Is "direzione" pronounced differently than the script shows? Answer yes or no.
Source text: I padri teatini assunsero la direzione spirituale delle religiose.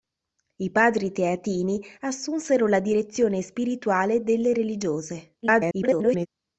no